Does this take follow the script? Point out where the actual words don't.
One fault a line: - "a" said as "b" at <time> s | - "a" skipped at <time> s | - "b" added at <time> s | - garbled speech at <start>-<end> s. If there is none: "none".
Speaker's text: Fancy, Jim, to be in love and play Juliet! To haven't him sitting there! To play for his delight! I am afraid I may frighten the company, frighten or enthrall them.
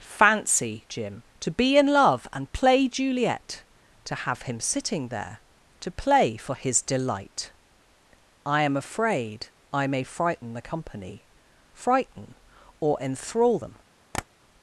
- "haven't" said as "have" at 4.2 s